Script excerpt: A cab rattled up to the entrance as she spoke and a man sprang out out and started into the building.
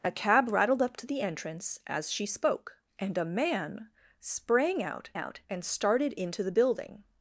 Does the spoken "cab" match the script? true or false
true